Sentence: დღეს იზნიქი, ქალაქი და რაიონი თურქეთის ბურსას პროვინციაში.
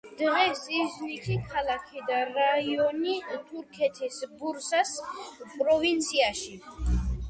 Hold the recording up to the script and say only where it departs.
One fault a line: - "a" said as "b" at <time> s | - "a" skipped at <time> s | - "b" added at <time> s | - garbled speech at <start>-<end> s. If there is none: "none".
none